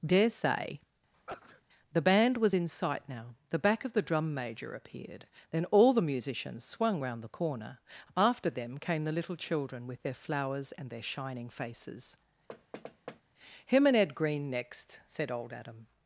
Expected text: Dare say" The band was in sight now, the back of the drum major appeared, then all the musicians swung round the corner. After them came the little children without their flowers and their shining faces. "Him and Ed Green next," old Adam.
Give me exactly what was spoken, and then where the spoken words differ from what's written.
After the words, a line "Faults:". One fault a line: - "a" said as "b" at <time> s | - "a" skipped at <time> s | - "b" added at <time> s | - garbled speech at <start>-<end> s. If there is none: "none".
Dare say" The band was in sight now, the back of the drum major appeared, then all the musicians swung round the corner. After them came the little children with their flowers and their shining faces. "Him and Ed Green next," said old Adam.
Faults:
- "without" said as "with" at 9.9 s
- "said" added at 15.1 s